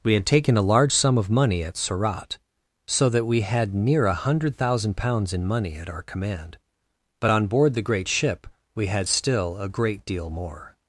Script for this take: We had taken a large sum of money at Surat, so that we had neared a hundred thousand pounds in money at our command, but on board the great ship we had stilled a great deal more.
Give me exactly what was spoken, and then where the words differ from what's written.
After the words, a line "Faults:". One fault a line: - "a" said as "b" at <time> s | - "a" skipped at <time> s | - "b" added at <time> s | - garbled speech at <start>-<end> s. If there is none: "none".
We had taken a large sum of money at Surat, so that we had near a hundred thousand pounds in money at our command, but on board the great ship we had still a great deal more.
Faults:
- "neared" said as "near" at 3.7 s
- "stilled" said as "still" at 9.1 s